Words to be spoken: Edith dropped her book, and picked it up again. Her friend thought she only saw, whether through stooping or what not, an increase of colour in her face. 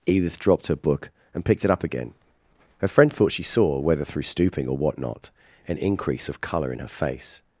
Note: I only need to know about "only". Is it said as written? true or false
false